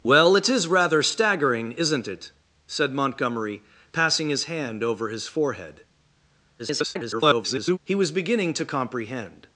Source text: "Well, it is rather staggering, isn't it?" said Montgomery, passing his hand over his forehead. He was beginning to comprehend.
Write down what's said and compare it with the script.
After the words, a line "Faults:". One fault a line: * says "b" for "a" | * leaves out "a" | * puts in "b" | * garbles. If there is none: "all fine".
"Well, it is rather staggering, isn't it?" said Montgomery, passing his hand over his forehead. [garbled] He was beginning to comprehend.
Faults:
* garbles